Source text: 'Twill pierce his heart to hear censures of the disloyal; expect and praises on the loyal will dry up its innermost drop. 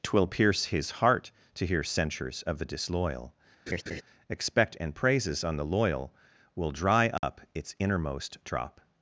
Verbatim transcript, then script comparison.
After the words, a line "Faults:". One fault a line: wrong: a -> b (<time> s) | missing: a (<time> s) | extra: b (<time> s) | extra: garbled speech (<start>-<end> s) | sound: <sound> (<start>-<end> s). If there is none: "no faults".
'Twill pierce his heart to hear censures of the disloyal; expect and praises on the loyal will dry up its innermost drop.
Faults:
sound: laugh (3.7-4.0 s)
sound: dropout (7.2-7.2 s)